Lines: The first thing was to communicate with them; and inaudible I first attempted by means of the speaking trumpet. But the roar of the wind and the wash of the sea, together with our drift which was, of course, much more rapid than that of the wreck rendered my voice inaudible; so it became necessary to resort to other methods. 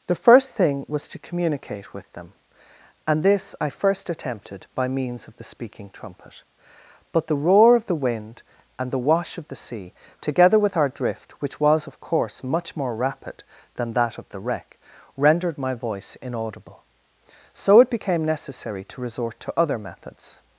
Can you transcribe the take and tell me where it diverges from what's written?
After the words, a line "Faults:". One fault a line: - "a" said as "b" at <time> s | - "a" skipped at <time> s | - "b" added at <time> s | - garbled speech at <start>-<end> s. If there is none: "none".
The first thing was to communicate with them; and this I first attempted by means of the speaking trumpet. But the roar of the wind and the wash of the sea, together with our drift which was, of course, much more rapid than that of the wreck rendered my voice inaudible; so it became necessary to resort to other methods.
Faults:
- "inaudible" said as "this" at 3.2 s